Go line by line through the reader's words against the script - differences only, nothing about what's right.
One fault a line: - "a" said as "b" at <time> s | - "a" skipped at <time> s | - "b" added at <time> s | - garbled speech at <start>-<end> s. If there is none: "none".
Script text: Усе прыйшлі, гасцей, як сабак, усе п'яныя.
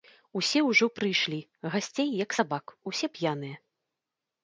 - "ўжо" added at 0.7 s